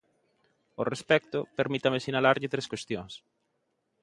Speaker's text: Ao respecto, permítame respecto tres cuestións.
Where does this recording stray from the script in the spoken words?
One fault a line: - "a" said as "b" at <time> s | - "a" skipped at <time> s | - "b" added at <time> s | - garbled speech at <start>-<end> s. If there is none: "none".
- "respecto" said as "sinalarlle" at 2.0 s